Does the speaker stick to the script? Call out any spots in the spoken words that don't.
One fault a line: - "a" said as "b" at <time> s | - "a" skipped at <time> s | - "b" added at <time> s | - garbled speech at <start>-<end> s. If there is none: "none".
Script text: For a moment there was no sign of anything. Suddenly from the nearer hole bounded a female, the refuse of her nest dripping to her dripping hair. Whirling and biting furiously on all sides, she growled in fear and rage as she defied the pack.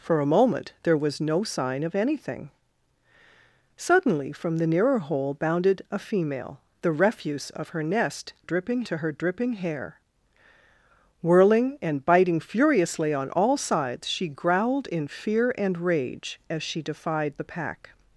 none